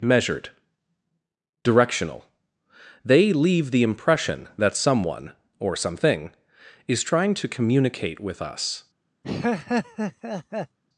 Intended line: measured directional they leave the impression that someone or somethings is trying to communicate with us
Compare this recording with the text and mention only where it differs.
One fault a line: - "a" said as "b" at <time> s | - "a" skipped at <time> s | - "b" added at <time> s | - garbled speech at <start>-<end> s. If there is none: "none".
- "somethings" said as "something" at 5.8 s